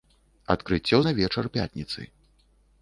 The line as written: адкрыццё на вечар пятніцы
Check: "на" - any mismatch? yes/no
no